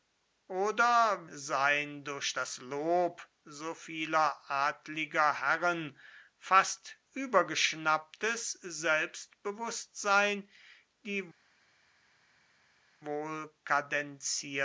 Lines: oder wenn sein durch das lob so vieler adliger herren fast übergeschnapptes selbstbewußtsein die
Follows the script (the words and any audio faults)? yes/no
no